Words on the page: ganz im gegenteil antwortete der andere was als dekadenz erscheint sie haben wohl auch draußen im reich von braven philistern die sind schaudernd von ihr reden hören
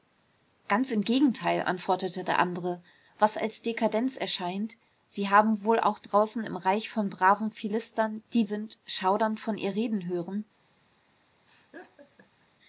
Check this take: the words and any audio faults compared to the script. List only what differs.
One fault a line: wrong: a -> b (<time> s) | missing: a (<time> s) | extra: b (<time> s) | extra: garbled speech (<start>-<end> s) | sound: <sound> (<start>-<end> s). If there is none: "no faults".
sound: laugh (11.5-12.5 s)